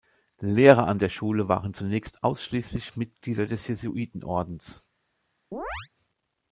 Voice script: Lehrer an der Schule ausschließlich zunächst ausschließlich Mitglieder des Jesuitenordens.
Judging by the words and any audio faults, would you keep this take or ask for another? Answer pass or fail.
fail